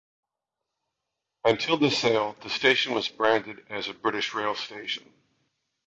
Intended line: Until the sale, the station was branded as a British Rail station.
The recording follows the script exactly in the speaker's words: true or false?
true